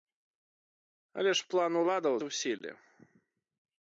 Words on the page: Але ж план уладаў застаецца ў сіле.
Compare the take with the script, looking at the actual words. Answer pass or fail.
fail